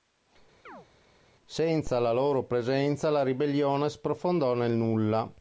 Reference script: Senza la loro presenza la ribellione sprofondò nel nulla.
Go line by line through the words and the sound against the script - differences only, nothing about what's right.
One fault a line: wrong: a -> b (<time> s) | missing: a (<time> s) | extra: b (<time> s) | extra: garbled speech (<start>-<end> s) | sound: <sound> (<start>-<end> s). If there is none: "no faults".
sound: chirp (0.7-0.9 s)